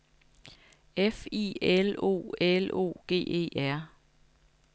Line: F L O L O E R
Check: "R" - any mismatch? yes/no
no